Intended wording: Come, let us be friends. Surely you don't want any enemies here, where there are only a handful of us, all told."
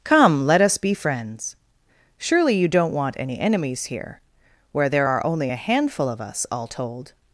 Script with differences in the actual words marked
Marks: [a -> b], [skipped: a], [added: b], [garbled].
Come, let us be friends. Surely you don't want any enemies here, where there are only a handful of us, all told."